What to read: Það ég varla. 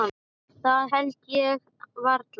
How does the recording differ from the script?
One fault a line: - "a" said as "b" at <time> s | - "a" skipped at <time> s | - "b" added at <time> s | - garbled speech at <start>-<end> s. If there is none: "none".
- "held" added at 0.9 s